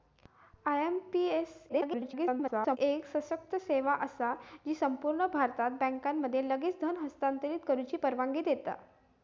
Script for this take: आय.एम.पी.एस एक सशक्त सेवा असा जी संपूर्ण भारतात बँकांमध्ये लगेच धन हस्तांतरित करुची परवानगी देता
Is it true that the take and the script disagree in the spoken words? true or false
true